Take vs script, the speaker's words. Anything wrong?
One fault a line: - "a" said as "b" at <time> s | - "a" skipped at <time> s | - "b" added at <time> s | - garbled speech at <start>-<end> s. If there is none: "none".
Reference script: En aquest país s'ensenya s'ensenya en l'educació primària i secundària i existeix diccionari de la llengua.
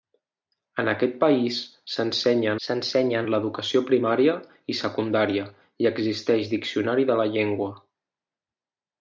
none